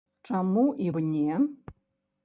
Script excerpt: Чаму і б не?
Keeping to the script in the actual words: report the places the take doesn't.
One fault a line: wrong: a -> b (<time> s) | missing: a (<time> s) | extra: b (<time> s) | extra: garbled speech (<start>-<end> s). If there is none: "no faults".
no faults